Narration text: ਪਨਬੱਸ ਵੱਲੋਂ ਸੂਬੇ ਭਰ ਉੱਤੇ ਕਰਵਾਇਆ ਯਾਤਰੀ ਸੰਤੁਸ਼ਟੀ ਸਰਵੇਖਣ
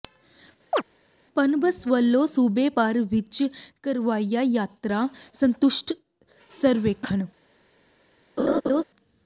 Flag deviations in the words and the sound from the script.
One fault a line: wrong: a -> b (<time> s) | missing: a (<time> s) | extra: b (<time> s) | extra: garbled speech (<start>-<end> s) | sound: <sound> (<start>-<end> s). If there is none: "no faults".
sound: chirp (0.7-0.8 s)
wrong: ਉੱਤੇ -> ਵਿੱਚ (3.1 s)
sound: laugh (8.4-8.8 s)